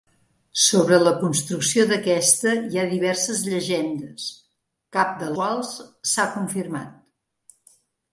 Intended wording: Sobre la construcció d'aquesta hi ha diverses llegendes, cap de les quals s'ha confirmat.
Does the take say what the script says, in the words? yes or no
no